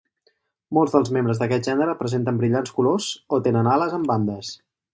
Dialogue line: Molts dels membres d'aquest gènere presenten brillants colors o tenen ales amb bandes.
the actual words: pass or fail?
pass